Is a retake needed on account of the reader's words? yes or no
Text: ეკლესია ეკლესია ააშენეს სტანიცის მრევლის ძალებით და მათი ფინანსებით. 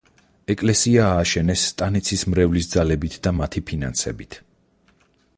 yes